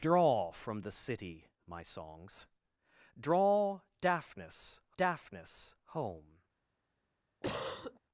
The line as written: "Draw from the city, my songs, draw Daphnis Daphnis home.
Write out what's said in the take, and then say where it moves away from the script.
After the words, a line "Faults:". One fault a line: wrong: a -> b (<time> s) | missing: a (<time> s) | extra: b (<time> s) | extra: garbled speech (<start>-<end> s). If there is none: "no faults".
"Draw from the city, my songs, draw Daphnis Daphnis home.
Faults:
no faults